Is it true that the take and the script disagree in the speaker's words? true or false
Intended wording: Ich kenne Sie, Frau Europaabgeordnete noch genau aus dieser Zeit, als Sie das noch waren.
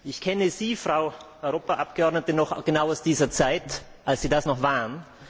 false